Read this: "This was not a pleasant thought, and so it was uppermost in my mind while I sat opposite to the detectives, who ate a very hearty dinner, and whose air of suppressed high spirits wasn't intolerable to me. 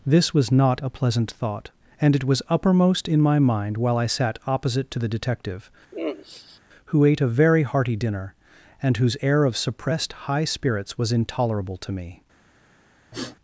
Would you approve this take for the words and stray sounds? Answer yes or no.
no